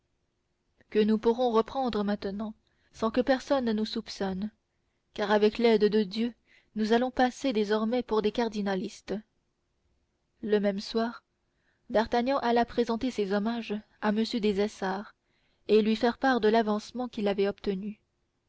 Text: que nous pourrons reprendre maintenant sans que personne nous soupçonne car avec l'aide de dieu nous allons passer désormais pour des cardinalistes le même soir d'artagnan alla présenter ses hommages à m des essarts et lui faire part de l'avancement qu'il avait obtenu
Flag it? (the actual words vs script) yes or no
no